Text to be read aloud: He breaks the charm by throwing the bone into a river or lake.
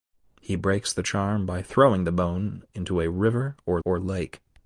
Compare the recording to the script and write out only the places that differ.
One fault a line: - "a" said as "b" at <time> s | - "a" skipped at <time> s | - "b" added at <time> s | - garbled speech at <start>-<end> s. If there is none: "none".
- "or" added at 3.8 s